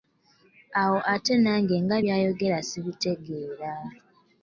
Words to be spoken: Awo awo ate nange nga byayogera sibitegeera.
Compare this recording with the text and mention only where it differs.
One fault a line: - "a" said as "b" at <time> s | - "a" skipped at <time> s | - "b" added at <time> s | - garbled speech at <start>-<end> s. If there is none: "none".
- "awo" skipped at 1.0 s